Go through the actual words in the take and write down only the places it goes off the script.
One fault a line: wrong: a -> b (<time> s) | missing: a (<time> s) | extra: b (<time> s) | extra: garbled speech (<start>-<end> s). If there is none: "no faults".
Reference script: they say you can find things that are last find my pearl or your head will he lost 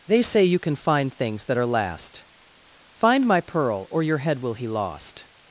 no faults